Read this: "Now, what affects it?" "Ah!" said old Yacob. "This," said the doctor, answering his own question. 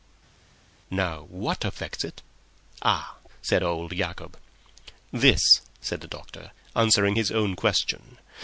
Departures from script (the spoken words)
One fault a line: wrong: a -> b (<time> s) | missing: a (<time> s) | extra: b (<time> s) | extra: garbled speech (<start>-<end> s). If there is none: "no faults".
no faults